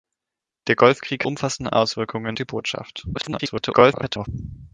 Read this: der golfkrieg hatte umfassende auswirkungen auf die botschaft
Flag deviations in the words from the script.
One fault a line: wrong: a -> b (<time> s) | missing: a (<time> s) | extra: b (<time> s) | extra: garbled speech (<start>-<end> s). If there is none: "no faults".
missing: hatte (1.2 s)
missing: auf (2.4 s)
extra: garbled speech (3.1-4.3 s)